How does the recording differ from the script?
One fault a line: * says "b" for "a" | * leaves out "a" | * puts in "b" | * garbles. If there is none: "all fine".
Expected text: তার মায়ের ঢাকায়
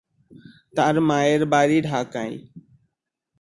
* puts in "বাড়ি"